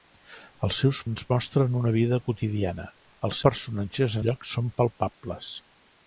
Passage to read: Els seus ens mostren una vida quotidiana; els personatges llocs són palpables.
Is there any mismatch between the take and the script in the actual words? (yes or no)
no